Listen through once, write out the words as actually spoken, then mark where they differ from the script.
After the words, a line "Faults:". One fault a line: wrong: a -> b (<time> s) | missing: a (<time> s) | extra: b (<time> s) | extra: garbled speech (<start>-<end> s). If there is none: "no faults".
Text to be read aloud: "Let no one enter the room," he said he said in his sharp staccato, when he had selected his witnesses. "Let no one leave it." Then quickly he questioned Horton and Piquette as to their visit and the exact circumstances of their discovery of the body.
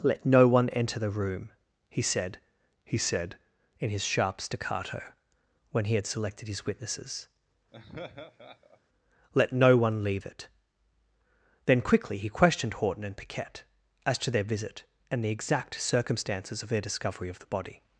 "Let no one enter the room," he said he said in his sharp staccato, when he had selected his witnesses. "Let no one leave it." Then quickly he questioned Horton and Piquette as to their visit and the exact circumstances of their discovery of the body.
Faults:
no faults